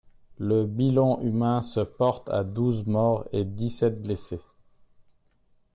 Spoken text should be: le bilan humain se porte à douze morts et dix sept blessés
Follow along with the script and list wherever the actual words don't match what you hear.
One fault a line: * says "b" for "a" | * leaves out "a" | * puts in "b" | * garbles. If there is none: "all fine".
all fine